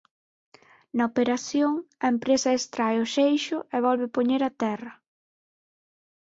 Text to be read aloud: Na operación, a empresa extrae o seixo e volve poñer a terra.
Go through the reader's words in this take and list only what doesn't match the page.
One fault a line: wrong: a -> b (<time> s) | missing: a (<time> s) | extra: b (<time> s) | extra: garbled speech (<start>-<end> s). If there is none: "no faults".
no faults